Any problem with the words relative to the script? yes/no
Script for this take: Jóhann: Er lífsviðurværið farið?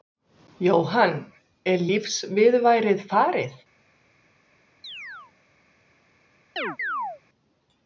no